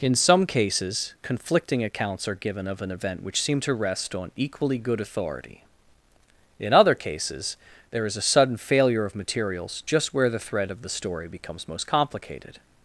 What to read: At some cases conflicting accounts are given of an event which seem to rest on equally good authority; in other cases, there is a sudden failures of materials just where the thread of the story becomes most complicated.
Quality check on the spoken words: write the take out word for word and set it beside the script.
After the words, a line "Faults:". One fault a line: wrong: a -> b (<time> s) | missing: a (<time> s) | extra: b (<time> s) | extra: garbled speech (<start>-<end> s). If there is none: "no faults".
In some cases conflicting accounts are given of an event which seem to rest on equally good authority; in other cases, there is a sudden failure of materials just where the thread of the story becomes most complicated.
Faults:
wrong: At -> In (0.0 s)
wrong: failures -> failure (8.6 s)